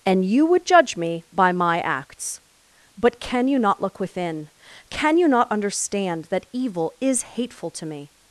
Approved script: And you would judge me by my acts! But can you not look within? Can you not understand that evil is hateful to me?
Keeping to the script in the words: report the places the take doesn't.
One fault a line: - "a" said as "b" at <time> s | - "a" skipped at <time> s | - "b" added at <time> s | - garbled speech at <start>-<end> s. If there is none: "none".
none